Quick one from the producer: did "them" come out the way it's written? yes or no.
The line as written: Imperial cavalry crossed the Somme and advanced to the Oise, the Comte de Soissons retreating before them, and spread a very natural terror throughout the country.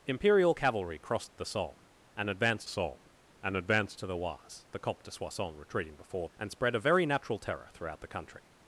no